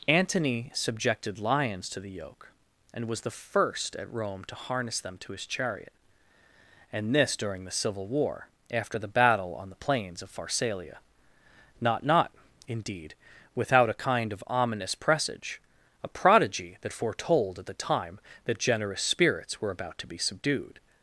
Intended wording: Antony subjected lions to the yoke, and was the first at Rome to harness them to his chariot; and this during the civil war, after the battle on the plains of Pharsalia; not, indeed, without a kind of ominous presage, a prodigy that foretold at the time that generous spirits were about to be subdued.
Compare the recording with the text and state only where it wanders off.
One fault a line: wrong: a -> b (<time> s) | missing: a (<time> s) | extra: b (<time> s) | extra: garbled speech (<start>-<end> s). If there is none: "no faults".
extra: not (12.0 s)